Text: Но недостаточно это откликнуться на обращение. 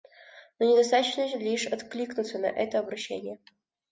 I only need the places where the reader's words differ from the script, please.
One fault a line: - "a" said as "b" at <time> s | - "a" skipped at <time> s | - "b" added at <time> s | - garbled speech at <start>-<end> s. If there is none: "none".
- "это" said as "лишь" at 1.4 s
- "это" added at 2.5 s